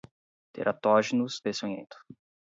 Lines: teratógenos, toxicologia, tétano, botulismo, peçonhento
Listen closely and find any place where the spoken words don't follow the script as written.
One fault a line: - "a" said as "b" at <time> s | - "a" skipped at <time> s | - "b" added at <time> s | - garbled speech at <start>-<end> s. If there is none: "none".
- "toxicologia tétano botulismo" skipped at 1.4 s